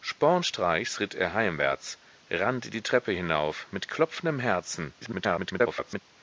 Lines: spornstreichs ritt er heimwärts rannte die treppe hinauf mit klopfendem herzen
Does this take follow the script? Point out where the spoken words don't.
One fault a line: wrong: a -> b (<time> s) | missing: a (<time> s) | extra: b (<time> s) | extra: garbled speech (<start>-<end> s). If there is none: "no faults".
extra: garbled speech (5.0-6.0 s)